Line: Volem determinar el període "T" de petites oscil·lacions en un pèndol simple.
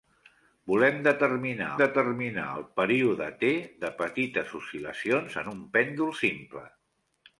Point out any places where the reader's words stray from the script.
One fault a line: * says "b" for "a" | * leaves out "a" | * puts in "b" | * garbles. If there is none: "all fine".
* puts in "determinar"